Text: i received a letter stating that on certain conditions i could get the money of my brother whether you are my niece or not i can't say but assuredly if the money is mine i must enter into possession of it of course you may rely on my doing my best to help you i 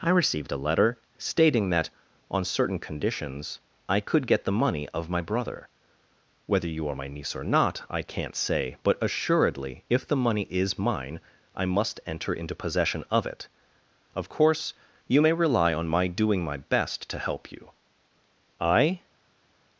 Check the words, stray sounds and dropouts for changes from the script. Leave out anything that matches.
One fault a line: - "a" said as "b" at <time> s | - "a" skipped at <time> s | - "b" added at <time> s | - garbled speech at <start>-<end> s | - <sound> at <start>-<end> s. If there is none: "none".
none